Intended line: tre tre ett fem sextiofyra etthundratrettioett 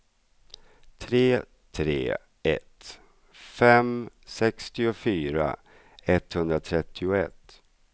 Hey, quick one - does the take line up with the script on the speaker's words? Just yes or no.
yes